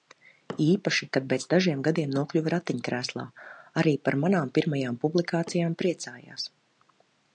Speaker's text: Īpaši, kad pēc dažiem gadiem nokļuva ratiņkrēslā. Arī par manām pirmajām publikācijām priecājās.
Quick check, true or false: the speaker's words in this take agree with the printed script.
true